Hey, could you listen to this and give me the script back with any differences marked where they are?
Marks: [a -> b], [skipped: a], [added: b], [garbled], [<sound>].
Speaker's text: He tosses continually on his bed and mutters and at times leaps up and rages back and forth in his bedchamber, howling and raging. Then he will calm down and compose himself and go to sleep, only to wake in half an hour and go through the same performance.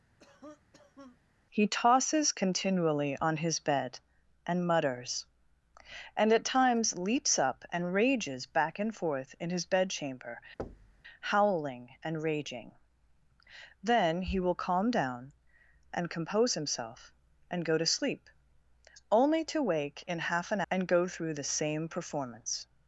[cough] He tosses continually on his bed and mutters and at times leaps up and rages back and forth in his bedchamber, [thud] howling and raging. Then he will calm down and compose himself and go to sleep, only to wake in half an [skipped: hour] and go through the same performance.